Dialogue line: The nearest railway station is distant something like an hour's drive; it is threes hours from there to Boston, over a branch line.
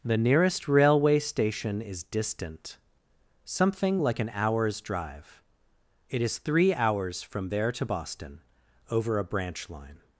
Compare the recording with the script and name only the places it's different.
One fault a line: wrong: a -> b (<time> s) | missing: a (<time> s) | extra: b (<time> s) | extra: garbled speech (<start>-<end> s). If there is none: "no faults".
wrong: threes -> three (6.4 s)